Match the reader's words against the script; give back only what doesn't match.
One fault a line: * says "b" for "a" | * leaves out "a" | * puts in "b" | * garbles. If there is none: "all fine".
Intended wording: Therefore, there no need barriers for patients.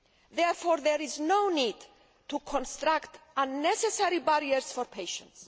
* puts in "is"
* puts in "to construct unnecessary"